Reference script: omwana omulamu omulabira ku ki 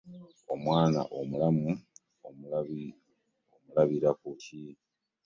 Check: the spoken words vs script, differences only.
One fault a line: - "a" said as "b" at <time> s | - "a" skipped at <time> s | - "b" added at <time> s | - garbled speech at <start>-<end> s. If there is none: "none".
none